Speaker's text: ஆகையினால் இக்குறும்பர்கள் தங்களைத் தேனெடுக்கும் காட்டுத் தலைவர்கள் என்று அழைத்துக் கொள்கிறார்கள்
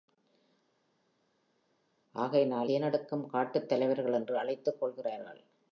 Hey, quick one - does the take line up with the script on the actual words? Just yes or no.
no